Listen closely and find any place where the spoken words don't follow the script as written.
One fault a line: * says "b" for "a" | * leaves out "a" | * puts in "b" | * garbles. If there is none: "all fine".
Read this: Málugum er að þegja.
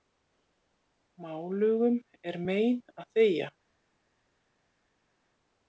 * puts in "mein"